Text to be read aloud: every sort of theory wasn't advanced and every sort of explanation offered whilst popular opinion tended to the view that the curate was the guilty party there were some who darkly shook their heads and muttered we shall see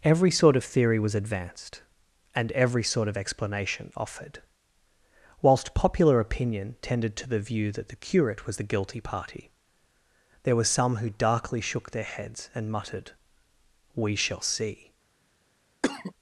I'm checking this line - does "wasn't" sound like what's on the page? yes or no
no